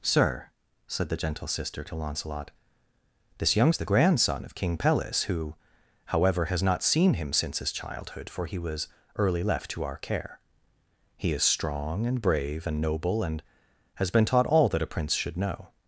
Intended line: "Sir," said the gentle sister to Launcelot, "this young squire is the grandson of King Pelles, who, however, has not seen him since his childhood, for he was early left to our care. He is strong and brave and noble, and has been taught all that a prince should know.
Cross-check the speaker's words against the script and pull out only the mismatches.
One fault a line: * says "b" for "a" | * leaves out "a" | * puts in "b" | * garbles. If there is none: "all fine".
* leaves out "squire"